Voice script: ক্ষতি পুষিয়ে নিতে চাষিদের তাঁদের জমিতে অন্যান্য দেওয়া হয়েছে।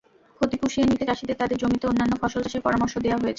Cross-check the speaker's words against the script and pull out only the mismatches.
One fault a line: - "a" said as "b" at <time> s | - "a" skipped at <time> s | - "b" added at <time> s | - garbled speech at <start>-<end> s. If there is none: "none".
- "ফসল চাষের পরামর্শ" added at 2.2 s